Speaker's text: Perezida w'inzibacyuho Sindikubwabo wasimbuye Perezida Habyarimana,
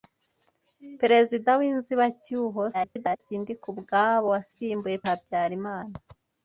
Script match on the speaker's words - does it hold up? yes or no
no